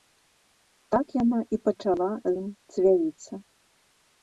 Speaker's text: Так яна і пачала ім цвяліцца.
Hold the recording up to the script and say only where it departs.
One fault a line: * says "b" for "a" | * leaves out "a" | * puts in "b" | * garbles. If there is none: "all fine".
all fine